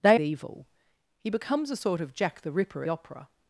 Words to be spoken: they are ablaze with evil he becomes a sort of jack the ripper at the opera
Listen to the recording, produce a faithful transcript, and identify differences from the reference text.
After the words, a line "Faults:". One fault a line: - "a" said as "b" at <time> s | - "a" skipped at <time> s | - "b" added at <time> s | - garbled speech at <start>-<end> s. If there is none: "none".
they evil he becomes a sort of jack the ripper opera
Faults:
- "are ablaze with" skipped at 0.2 s
- "at the" skipped at 2.8 s